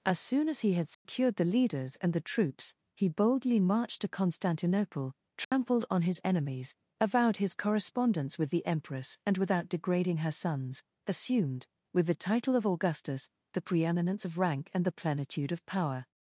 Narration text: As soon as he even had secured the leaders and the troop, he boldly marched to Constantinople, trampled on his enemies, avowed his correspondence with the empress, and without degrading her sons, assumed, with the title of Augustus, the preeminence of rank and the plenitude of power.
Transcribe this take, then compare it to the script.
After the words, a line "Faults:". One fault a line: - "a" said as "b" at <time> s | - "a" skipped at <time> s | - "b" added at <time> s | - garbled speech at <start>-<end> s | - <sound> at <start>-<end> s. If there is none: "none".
As soon as he had secured the leaders and the troops, he boldly marched to Constantinople, trampled on his enemies, avowed his correspondence with the empress, and without degrading her sons, assumed, with the title of Augustus, the preeminence of rank and the plenitude of power.
Faults:
- "even" skipped at 0.7 s
- dropout at 0.9-1.1 s
- "troop" said as "troops" at 2.2 s
- dropout at 5.4-5.5 s